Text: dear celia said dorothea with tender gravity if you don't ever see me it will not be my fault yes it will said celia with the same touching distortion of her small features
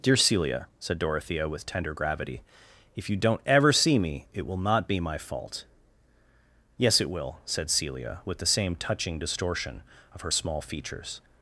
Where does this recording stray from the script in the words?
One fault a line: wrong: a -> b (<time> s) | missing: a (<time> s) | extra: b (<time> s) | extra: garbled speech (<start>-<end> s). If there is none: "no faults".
no faults